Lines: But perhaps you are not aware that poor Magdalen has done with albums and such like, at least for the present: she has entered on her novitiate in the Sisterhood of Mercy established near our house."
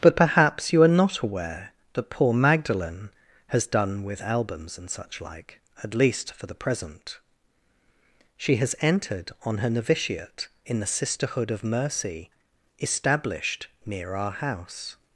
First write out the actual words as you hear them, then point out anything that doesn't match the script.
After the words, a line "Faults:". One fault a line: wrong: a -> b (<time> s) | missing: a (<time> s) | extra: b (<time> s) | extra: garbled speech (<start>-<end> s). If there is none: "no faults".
But perhaps you are not aware that poor Magdalen has done with albums and such like, at least for the present: she has entered on her novitiate in the Sisterhood of Mercy established near our house."
Faults:
no faults